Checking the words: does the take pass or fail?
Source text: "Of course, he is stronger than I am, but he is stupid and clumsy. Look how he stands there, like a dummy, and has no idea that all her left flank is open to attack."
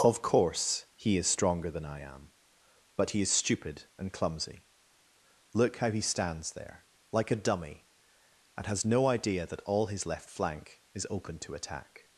fail